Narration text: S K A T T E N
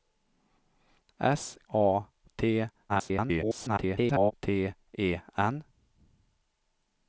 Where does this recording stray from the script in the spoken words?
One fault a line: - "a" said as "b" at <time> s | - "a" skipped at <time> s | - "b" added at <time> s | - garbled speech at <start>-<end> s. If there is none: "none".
- "K" skipped at 1.6 s
- garbled speech at 2.9-4.3 s